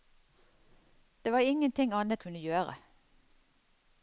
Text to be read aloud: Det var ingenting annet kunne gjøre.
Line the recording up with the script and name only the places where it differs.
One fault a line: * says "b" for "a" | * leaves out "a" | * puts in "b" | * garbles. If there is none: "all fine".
all fine